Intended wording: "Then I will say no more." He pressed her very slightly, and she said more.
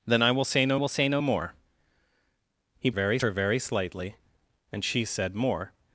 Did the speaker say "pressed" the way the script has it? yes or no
no